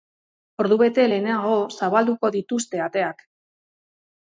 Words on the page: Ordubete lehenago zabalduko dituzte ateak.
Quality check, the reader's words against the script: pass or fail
pass